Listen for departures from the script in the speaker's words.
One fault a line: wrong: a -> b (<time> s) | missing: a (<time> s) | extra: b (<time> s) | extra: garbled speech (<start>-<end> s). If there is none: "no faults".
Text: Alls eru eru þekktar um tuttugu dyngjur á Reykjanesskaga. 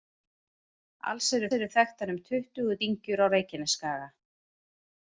no faults